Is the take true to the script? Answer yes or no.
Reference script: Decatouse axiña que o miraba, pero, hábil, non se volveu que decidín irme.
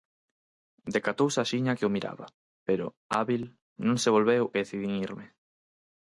yes